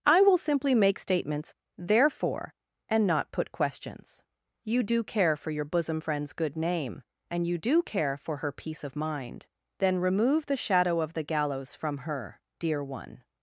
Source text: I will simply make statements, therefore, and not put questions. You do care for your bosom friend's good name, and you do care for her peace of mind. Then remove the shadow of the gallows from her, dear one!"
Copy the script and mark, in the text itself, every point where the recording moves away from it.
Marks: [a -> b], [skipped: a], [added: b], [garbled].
I will simply make statements, therefore, and not put questions. You do care for your bosom friend's good name, and you do care for her peace of mind. Then remove the shadow of the gallows from her, dear one!"